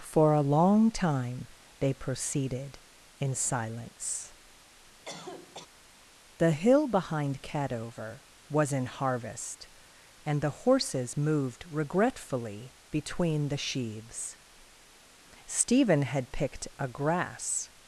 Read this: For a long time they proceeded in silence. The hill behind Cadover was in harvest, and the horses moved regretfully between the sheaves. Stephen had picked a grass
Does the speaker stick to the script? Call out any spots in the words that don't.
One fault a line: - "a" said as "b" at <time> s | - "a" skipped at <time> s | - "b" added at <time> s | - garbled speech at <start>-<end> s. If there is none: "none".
none